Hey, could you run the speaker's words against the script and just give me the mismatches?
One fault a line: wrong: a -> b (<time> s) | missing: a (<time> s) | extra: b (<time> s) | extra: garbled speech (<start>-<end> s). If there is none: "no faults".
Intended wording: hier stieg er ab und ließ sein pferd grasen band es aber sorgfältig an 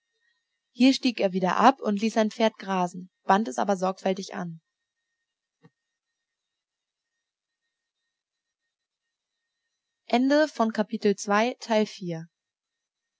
extra: wieder (1.3 s)